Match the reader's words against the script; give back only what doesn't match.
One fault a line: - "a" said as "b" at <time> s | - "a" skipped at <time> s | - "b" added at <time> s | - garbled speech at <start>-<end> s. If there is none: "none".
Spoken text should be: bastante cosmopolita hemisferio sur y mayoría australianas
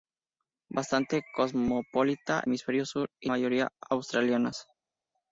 none